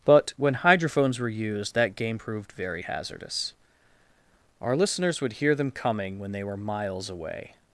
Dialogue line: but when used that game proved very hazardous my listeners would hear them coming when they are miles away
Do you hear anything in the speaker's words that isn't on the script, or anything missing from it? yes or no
yes